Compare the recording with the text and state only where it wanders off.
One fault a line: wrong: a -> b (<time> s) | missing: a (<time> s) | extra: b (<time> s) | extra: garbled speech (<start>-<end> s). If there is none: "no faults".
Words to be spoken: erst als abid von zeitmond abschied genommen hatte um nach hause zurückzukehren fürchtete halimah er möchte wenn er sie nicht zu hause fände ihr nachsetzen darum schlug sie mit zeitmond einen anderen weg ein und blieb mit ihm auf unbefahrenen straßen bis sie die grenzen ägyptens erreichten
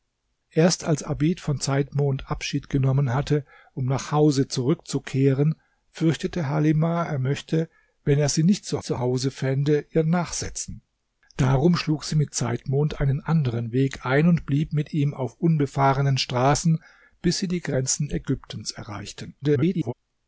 extra: zu (8.8 s)
extra: garbled speech (19.4-19.9 s)